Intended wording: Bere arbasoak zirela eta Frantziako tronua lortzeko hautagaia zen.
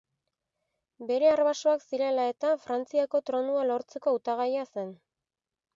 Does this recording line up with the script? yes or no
yes